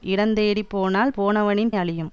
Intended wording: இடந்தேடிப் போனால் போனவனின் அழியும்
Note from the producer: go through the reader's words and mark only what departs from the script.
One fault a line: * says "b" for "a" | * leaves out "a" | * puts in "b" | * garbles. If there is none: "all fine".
all fine